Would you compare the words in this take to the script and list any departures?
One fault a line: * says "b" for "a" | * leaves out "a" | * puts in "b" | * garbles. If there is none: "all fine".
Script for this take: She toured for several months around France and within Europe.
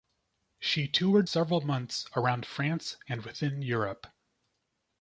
* leaves out "for"